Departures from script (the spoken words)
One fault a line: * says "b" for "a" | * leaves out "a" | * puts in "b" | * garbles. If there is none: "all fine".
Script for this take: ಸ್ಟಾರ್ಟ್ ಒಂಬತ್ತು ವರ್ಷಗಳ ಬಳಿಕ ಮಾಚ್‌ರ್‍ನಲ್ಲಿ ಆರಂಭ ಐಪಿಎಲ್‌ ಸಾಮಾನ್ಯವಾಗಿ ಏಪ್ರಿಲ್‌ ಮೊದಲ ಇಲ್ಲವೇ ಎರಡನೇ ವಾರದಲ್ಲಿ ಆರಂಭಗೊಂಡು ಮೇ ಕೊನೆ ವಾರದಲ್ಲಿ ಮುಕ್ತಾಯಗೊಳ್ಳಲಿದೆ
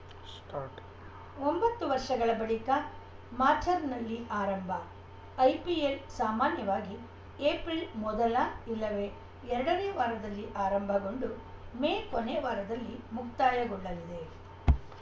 all fine